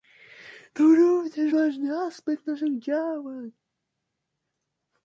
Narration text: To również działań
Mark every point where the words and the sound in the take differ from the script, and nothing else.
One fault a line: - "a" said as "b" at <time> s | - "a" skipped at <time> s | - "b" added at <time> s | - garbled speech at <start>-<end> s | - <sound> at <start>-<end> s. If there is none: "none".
- "ważny aspekt naszych" added at 1.5 s